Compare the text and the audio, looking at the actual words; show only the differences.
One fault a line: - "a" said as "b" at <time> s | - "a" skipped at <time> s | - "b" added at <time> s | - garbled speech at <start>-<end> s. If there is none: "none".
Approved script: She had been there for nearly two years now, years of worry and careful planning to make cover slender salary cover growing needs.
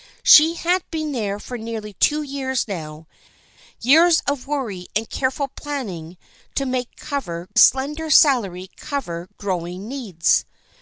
none